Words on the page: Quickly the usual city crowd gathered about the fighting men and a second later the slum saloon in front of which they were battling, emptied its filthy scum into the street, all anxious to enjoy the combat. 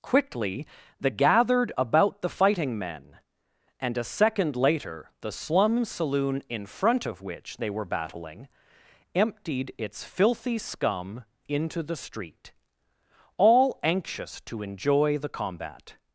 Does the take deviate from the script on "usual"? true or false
true